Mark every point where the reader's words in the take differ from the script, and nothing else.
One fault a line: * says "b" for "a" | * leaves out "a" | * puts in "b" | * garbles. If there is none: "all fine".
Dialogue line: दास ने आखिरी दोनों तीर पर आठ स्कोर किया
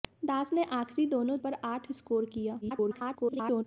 * leaves out "तीर"
* garbles